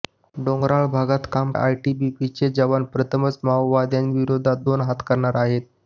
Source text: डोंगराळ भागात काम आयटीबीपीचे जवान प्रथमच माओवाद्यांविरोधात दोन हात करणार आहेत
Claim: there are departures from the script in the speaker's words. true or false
false